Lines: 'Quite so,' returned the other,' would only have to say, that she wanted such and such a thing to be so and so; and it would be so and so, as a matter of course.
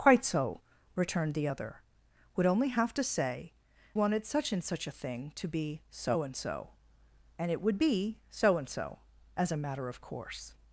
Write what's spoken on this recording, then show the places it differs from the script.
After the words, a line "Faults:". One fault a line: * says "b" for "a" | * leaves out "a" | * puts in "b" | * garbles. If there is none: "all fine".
'Quite so,' returned the other,' would only have to say, wanted such and such a thing to be so and so; and it would be so and so, as a matter of course.
Faults:
* leaves out "that she"